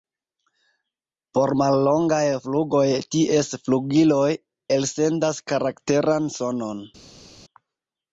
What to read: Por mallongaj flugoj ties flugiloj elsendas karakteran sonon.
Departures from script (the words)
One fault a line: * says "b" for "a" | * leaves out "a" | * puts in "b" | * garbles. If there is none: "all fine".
all fine